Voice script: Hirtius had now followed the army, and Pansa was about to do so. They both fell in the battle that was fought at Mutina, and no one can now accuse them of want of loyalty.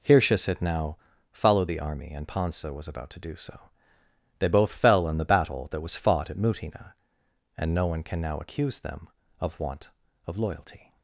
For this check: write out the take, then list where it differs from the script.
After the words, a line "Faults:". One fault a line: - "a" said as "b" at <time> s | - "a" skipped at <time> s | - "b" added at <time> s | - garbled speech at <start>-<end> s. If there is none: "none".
Hirtius had now followed the army, and Pansa was about to do so. They both fell in the battle that was fought at Mutina, and no one can now accuse them of want of loyalty.
Faults:
none